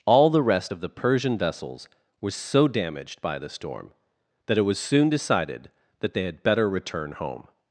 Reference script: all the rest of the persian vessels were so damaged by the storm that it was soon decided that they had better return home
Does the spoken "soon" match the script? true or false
true